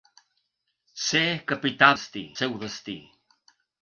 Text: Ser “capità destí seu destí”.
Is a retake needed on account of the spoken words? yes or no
no